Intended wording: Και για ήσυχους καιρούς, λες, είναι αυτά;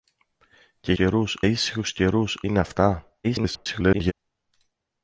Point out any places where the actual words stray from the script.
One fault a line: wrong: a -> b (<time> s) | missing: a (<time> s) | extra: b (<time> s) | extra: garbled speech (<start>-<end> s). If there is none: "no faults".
wrong: για -> καιρούς (0.9 s)
missing: λες (2.4 s)
extra: garbled speech (3.2-4.1 s)